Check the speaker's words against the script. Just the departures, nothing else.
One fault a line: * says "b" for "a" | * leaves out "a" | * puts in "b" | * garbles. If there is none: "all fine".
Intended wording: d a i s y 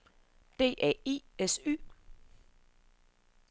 all fine